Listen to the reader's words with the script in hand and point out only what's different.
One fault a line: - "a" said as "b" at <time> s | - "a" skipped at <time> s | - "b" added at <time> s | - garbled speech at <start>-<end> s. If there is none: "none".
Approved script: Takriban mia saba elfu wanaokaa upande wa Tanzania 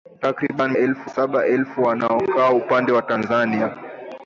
- "mia" said as "elfu" at 0.7 s